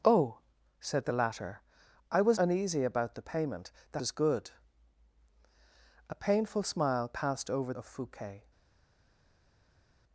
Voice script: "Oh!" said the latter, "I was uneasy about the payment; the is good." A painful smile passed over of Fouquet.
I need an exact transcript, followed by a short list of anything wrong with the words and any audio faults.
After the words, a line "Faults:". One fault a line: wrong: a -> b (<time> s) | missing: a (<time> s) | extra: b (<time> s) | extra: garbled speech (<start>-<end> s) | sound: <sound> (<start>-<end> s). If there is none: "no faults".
"Oh!" said the latter, "I was uneasy about the payment; the is good." A painful smile passed over of Fouquet.
Faults:
no faults